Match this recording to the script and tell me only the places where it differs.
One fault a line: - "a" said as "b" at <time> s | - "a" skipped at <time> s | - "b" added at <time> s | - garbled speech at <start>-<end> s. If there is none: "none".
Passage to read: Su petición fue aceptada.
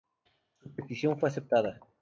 none